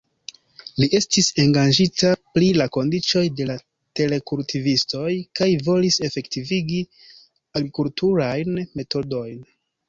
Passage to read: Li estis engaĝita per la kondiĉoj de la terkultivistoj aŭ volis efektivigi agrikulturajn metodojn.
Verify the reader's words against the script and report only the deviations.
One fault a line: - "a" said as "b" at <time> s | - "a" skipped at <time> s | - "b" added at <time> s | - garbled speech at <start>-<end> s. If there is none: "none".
- "per" said as "pri" at 2.4 s
- "aŭ" said as "kaj" at 5.4 s